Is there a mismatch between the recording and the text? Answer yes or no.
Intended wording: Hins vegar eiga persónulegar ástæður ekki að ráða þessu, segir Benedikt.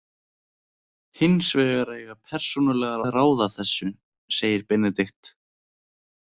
yes